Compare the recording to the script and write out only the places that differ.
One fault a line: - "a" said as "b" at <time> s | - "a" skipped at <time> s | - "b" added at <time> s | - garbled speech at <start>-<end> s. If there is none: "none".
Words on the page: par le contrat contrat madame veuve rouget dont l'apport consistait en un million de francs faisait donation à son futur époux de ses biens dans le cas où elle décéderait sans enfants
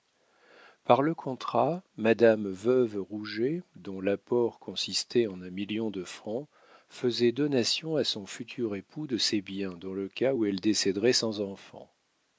- "contrat" skipped at 1.8 s